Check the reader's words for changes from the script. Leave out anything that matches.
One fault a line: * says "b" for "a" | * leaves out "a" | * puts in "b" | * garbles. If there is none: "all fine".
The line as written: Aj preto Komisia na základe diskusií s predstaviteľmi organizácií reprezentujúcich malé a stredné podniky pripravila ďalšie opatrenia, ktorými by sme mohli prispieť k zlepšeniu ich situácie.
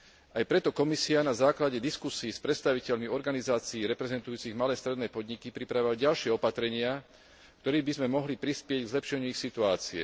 all fine